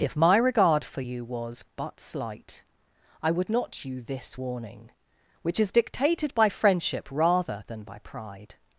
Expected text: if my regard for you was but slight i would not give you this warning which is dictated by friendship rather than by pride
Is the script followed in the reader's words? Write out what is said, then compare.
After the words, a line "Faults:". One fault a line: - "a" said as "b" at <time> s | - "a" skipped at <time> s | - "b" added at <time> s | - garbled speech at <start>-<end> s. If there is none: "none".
if my regard for you was but slight i would not you this warning which is dictated by friendship rather than by pride
Faults:
- "give" skipped at 3.8 s